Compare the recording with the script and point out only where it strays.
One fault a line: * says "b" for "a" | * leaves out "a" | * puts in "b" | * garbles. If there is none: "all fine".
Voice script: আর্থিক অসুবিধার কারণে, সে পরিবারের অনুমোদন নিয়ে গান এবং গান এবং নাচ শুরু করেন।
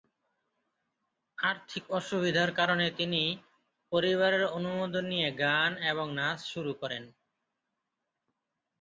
* says "তিনি" for "সে"
* leaves out "গান এবং"